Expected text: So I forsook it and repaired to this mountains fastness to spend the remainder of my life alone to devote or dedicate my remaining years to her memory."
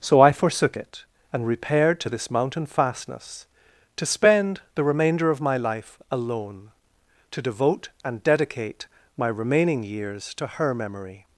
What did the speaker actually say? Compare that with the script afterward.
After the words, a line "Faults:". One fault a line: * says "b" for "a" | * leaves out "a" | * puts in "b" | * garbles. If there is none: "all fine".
So I forsook it and repaired to this mountain fastness to spend the remainder of my life alone to devote and dedicate my remaining years to her memory."
Faults:
* says "mountain" for "mountains"
* says "and" for "or"